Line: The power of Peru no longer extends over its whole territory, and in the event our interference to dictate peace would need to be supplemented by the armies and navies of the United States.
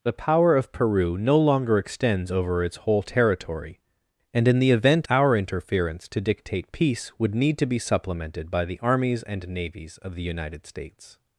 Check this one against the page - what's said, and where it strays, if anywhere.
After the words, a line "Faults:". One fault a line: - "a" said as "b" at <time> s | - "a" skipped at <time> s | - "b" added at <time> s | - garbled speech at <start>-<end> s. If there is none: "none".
The power of Peru no longer extends over its whole territory, and in the event our interference to dictate peace would need to be supplemented by the armies and navies of the United States.
Faults:
none